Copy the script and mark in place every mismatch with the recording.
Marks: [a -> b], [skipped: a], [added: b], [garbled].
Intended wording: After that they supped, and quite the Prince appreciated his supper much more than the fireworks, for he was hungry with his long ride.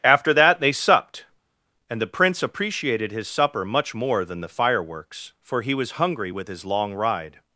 After that they supped, and [skipped: quite] the Prince appreciated his supper much more than the fireworks, for he was hungry with his long ride.